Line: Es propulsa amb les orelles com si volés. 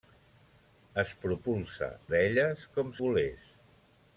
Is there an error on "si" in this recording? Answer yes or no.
yes